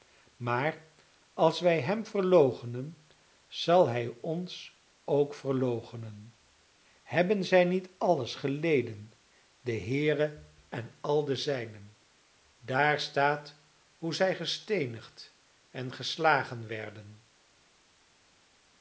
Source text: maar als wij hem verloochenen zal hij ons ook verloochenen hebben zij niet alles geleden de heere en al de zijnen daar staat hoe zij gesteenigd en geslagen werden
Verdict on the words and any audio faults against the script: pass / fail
pass